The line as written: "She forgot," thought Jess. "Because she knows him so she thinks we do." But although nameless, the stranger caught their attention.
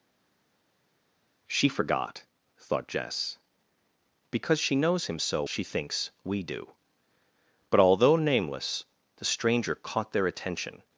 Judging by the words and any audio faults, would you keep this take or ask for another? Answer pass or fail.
pass